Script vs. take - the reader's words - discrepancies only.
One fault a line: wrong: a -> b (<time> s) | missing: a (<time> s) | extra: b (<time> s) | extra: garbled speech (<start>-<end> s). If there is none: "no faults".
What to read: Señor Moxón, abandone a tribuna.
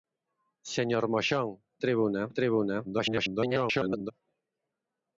wrong: abandone -> tribuna (1.8 s)
extra: garbled speech (2.8-4.1 s)